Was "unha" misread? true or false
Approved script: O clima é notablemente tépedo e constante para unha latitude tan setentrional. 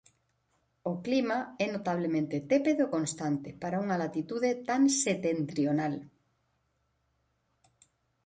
false